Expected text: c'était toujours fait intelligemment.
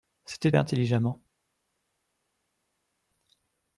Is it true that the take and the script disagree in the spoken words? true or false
true